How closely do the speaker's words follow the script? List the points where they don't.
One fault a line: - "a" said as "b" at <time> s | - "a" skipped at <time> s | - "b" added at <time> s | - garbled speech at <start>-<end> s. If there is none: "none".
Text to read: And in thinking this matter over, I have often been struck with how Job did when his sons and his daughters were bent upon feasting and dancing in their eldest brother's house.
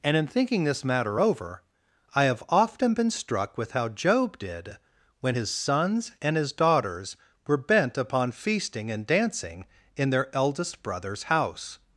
none